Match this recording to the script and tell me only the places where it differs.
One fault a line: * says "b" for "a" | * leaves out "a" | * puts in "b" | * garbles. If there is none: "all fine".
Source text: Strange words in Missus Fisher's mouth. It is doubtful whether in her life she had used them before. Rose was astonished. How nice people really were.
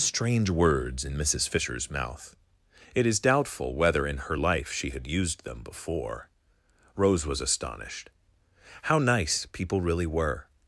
all fine